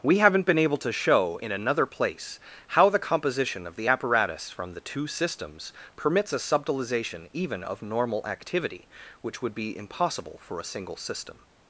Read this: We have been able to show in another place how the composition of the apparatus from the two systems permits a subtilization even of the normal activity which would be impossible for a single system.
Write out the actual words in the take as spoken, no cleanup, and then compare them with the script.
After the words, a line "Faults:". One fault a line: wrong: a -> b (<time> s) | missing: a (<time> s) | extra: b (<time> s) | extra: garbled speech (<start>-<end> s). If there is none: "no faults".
We haven't been able to show in another place how the composition of the apparatus from the two systems permits a subtilization even of normal activity which would be impossible for a single system.
Faults:
wrong: have -> haven't (0.2 s)
missing: the (7.8 s)